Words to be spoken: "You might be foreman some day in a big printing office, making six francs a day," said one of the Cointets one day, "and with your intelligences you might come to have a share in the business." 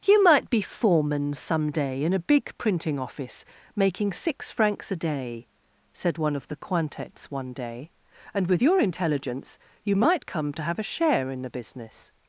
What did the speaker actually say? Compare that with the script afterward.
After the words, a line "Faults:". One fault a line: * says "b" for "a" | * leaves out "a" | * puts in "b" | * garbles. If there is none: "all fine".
"You might be foreman some day in a big printing office, making six francs a day," said one of the Cointets one day, "and with your intelligence you might come to have a share in the business."
Faults:
* says "intelligence" for "intelligences"